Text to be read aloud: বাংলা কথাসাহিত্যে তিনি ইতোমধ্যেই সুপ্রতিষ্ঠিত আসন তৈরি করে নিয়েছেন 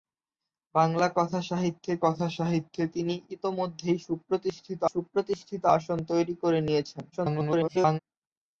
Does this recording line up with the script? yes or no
no